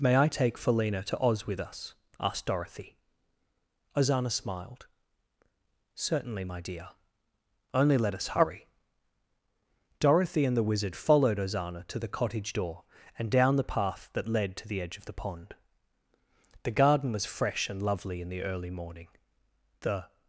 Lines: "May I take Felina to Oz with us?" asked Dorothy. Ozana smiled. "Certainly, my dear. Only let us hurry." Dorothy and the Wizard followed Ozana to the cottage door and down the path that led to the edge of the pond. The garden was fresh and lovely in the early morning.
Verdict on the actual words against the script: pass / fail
fail